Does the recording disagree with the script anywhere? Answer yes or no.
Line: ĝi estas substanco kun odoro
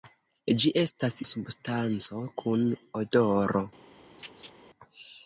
no